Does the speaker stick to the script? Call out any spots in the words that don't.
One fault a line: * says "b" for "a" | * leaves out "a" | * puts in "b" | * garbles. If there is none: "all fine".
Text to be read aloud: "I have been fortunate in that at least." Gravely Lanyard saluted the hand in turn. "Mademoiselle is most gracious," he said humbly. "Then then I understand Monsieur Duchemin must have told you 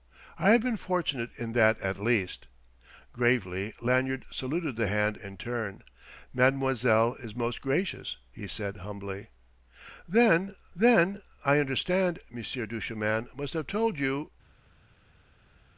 all fine